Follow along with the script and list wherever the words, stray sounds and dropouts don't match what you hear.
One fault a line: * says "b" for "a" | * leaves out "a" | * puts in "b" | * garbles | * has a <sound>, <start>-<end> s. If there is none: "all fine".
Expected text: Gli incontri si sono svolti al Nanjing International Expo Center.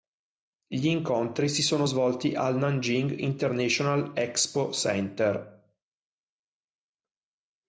all fine